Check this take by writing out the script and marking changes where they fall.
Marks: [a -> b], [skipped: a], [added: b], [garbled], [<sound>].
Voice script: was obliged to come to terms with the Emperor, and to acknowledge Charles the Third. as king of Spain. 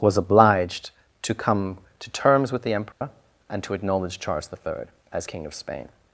was obliged to come to terms with the Emperor, [dropout] and to acknowledge Charles the Third. as king of Spain.